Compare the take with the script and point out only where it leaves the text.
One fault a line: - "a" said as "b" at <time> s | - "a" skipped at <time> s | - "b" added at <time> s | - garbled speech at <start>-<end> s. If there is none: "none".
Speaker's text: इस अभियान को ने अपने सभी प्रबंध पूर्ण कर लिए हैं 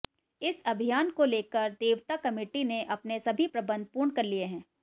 - "लेकर देवता कमेटी" added at 1.2 s